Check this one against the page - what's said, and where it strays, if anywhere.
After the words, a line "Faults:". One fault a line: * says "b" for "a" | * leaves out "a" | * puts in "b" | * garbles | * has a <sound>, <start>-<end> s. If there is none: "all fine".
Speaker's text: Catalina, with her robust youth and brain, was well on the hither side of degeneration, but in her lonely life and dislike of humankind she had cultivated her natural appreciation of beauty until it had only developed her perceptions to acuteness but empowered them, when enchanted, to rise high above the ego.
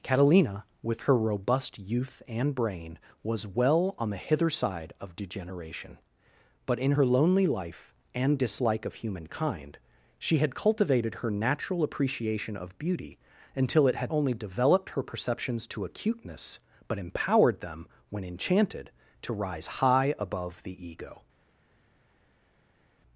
Catalina, with her robust youth and brain, was well on the hither side of degeneration, but in her lonely life and dislike of humankind she had cultivated her natural appreciation of beauty until it had only developed her perceptions to acuteness but empowered them, when enchanted, to rise high above the ego.
Faults:
all fine